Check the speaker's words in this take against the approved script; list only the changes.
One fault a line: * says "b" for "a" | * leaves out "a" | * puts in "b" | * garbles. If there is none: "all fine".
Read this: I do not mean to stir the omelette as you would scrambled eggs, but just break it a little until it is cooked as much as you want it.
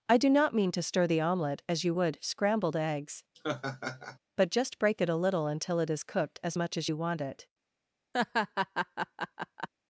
all fine